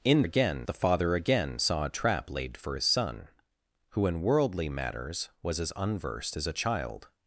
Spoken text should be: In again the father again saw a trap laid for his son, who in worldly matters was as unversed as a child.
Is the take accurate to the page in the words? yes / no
yes